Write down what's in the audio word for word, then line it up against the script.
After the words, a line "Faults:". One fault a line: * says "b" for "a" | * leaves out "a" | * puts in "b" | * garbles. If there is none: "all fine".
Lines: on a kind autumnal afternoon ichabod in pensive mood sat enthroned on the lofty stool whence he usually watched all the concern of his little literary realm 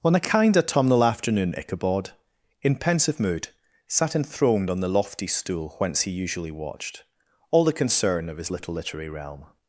on a kind autumnal afternoon ichabod in pensive mood sat enthroned on the lofty stool whence he usually watched all the concern of his little literary realm
Faults:
all fine